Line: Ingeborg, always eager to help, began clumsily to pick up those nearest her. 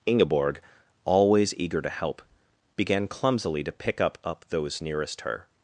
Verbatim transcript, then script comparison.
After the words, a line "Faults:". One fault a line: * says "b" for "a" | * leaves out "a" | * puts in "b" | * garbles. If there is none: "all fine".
Ingeborg, always eager to help, began clumsily to pick up up those nearest her.
Faults:
* puts in "up"